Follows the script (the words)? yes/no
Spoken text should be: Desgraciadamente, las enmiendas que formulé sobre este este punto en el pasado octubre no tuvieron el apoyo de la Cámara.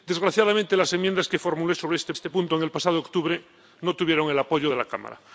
yes